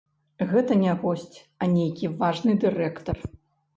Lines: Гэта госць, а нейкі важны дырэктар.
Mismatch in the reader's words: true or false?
true